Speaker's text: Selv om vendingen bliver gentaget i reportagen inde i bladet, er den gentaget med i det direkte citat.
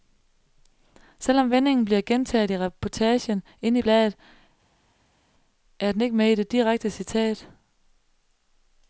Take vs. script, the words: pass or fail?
fail